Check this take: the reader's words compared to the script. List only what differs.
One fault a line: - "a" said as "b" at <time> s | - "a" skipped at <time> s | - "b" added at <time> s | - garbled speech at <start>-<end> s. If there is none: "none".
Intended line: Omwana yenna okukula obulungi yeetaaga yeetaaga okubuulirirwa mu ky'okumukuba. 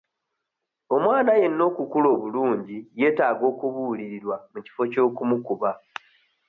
- "yeetaaga" skipped at 3.4 s
- "kifo" added at 4.7 s